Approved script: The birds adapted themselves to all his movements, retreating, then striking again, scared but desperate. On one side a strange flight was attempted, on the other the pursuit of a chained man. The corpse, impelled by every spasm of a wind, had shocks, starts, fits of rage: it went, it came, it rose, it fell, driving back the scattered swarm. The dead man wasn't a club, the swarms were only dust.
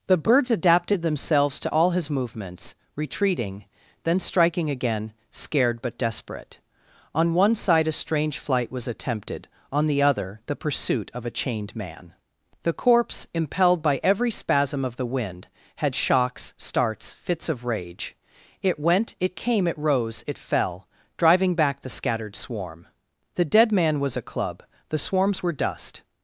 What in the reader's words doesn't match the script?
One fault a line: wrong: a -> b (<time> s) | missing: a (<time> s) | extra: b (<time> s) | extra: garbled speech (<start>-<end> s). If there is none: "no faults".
wrong: a -> the (14.9 s)
wrong: wasn't -> was (24.0 s)
missing: only (25.5 s)